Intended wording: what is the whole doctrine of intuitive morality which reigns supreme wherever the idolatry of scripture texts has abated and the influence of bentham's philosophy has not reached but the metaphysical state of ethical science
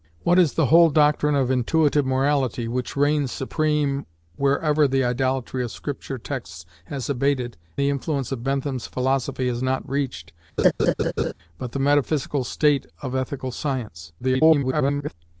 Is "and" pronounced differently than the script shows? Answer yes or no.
yes